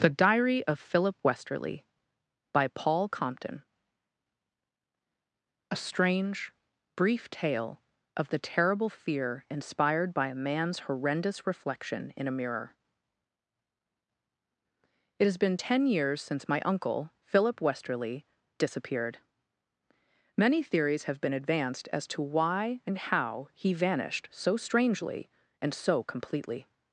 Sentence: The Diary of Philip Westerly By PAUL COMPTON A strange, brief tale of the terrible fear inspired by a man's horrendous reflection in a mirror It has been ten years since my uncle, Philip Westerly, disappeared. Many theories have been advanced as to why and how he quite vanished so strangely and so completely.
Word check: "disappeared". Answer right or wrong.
right